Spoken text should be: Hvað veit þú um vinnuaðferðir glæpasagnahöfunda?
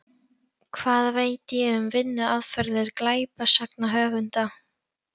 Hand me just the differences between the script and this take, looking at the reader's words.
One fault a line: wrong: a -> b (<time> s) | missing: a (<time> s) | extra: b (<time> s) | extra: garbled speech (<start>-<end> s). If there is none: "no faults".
wrong: þú -> ég (1.6 s)